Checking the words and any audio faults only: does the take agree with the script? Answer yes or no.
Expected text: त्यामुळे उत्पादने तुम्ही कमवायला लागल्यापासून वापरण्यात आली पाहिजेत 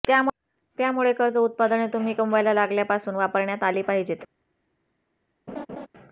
no